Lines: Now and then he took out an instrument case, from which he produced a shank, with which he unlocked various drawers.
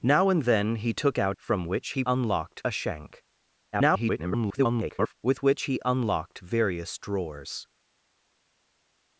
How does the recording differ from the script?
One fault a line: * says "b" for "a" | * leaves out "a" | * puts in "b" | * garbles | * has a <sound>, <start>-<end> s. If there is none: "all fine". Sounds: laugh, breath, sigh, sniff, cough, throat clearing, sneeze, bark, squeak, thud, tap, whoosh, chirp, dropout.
* leaves out "an instrument case"
* says "unlocked" for "produced"
* garbles